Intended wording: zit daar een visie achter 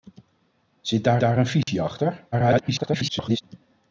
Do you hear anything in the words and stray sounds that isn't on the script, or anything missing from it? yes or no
yes